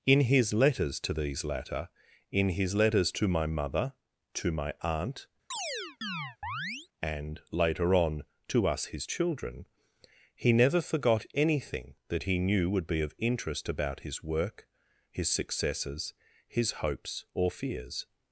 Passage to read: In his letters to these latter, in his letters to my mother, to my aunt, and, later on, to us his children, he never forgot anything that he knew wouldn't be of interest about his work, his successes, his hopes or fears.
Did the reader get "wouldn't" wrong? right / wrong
wrong